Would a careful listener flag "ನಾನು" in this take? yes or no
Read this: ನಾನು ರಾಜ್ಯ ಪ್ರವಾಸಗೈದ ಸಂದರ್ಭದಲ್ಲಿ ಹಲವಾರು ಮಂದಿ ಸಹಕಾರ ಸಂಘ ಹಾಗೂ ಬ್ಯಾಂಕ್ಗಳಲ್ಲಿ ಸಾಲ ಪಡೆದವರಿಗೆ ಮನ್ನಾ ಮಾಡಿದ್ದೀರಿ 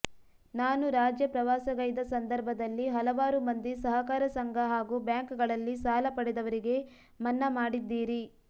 no